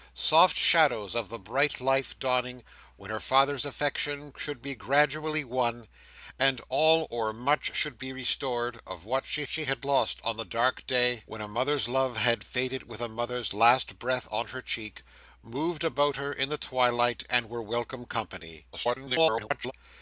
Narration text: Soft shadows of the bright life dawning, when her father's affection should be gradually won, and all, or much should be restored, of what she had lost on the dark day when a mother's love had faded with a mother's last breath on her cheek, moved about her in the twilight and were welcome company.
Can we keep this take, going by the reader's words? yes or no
no